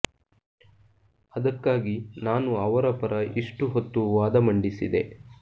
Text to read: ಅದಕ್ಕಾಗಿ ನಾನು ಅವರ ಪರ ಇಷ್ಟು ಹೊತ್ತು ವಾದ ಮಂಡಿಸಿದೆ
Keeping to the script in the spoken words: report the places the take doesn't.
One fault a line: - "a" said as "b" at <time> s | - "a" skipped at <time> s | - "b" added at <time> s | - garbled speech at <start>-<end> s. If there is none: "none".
none